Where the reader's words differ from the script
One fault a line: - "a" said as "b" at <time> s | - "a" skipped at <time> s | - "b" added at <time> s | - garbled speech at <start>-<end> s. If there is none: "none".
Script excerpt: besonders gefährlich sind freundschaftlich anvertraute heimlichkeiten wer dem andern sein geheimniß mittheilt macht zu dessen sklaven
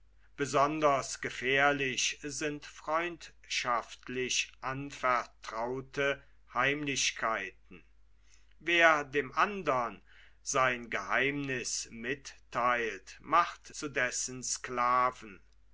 none